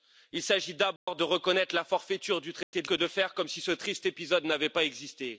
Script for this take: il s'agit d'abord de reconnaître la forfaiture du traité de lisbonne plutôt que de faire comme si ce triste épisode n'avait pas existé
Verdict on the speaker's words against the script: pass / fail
fail